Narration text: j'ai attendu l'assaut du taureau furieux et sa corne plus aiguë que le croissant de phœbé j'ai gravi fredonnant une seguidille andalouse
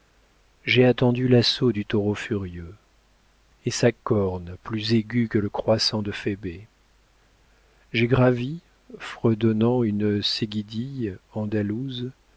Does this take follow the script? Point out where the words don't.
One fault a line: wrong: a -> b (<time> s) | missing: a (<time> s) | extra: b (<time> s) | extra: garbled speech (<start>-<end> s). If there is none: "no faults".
no faults